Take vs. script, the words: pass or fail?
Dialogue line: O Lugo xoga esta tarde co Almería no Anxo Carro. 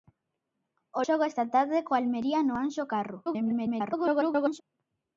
fail